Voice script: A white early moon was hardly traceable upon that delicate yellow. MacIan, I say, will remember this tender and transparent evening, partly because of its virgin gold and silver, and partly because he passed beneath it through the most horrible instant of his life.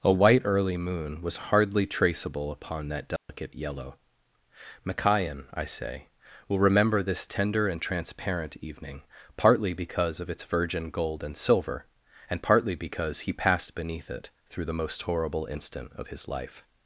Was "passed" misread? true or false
false